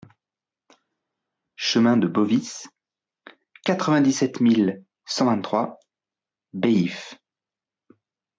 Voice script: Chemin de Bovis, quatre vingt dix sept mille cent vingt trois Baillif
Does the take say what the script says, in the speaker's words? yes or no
yes